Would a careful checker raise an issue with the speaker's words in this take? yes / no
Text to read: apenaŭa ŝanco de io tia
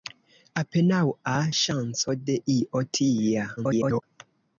yes